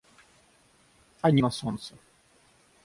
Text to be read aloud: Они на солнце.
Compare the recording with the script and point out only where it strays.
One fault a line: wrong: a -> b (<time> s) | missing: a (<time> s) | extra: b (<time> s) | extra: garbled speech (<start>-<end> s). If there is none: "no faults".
no faults